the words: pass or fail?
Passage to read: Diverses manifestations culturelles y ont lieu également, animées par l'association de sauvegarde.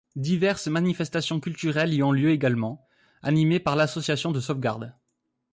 pass